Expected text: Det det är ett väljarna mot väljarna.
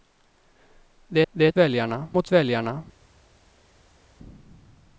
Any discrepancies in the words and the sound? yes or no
no